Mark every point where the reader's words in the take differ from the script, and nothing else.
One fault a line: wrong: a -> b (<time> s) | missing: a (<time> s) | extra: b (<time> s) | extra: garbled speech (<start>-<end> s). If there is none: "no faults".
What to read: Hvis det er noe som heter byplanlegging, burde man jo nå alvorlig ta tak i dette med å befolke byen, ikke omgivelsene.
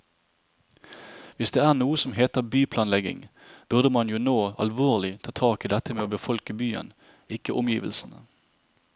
no faults